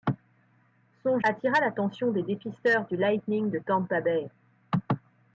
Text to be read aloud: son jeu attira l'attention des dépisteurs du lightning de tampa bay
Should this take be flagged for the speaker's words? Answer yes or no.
yes